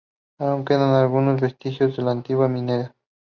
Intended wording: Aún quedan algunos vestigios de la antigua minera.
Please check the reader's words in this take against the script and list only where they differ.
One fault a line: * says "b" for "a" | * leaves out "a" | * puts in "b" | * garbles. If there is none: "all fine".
all fine